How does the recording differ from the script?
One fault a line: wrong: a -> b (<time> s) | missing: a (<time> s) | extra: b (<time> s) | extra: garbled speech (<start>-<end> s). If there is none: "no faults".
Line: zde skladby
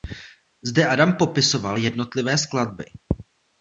extra: adam popisoval jednotlivé (0.9 s)